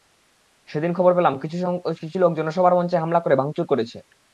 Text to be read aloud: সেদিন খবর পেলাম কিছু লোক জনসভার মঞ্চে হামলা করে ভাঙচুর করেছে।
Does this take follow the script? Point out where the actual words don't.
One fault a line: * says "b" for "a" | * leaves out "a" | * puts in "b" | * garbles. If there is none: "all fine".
all fine